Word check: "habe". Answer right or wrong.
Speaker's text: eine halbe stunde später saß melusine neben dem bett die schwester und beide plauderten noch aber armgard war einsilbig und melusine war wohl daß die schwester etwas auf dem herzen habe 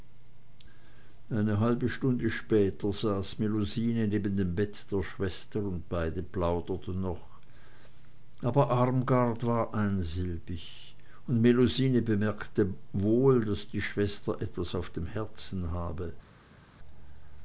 right